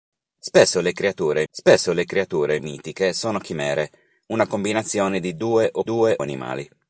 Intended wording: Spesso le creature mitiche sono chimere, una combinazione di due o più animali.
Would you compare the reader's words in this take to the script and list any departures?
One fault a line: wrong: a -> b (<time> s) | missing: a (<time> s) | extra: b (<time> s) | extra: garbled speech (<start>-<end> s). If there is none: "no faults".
extra: spesso le creature (1.5 s)
wrong: più -> due (5.8 s)